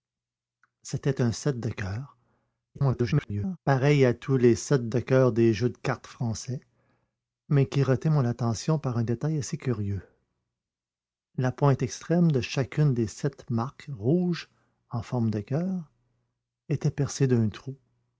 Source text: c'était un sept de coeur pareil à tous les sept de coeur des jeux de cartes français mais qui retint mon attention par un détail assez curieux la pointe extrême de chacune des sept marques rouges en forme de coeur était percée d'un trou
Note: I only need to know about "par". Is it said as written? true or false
true